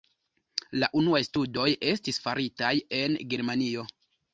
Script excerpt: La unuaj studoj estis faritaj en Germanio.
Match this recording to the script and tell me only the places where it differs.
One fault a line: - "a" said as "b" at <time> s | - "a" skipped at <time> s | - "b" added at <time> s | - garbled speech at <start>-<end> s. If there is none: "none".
none